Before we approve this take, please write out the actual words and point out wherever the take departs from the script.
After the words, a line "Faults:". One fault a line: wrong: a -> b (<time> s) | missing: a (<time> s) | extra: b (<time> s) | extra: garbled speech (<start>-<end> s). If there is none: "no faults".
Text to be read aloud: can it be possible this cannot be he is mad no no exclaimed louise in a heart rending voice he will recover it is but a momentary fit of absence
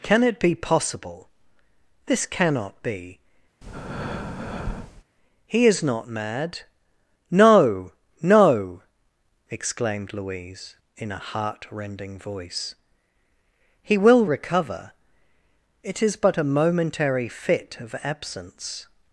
can it be possible this cannot be he is not mad no no exclaimed louise in a heart rending voice he will recover it is but a momentary fit of absence
Faults:
extra: not (5.8 s)